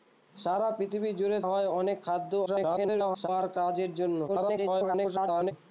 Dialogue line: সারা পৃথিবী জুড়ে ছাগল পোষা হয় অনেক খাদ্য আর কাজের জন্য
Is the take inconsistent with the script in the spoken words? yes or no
yes